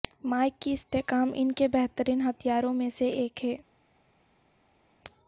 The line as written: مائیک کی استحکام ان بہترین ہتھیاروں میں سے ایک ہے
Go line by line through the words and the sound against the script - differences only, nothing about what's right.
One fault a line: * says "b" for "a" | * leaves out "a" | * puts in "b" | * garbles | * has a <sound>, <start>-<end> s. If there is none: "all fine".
* puts in "کے"